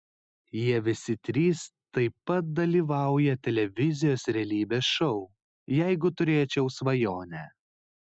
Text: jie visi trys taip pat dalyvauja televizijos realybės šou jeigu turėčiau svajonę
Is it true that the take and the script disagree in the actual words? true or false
false